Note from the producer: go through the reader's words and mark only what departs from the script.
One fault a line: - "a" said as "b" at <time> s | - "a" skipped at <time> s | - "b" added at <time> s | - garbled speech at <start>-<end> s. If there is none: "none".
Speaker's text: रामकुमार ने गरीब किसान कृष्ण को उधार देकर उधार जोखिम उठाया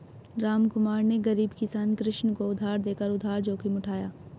none